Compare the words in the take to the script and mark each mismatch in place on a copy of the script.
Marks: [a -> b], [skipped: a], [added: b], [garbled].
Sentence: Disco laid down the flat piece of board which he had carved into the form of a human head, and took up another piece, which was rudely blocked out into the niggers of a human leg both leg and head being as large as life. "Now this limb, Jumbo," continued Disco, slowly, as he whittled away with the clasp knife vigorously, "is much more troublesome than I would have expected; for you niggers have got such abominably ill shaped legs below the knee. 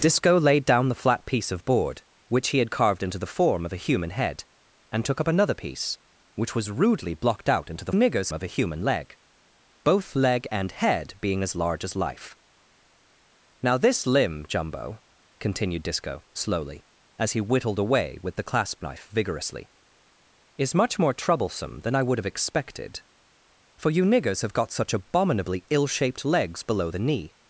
Disco laid down the flat piece of board which he had carved into the form of a human head, and took up another piece, which was rudely blocked out into the niggers of a human leg both leg and head being as large as life. "Now this limb, Jumbo," continued Disco, slowly, as he whittled away with the clasp knife vigorously, "is much more troublesome than I would have expected; for you niggers have got such abominably ill shaped legs below the knee.